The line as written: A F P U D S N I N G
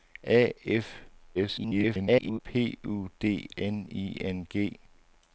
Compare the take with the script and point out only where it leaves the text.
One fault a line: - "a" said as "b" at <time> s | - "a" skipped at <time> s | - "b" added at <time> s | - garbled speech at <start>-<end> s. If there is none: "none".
- garbled speech at 1.3-2.4 s
- "S" skipped at 3.5 s